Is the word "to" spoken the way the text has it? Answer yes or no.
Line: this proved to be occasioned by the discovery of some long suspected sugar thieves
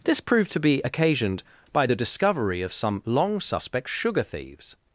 yes